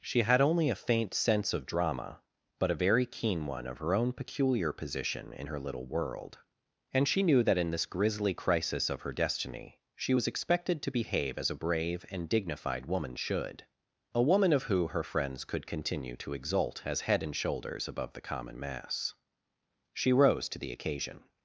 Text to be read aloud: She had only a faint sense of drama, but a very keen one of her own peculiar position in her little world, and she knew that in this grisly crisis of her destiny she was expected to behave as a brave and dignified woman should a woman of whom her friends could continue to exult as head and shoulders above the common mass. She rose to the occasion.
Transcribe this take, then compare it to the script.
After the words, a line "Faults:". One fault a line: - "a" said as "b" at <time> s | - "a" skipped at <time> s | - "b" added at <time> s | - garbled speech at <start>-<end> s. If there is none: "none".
She had only a faint sense of drama, but a very keen one of her own peculiar position in her little world, and she knew that in this grisly crisis of her destiny she was expected to behave as a brave and dignified woman should a woman of who her friends could continue to exult as head and shoulders above the common mass. She rose to the occasion.
Faults:
- "whom" said as "who" at 14.6 s